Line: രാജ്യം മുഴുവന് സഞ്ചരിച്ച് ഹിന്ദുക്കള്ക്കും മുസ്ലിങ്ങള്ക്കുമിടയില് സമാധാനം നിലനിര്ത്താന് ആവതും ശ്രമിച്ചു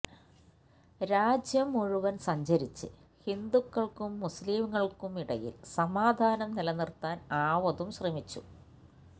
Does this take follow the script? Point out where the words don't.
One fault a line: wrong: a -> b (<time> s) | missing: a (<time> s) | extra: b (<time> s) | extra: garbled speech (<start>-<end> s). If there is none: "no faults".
no faults